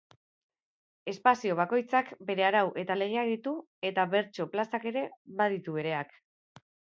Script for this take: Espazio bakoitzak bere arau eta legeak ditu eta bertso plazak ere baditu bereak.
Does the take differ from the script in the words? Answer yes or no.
no